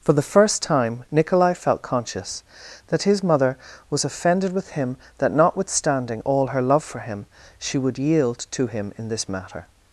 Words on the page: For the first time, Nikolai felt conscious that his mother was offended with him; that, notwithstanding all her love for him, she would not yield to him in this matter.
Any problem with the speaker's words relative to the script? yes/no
yes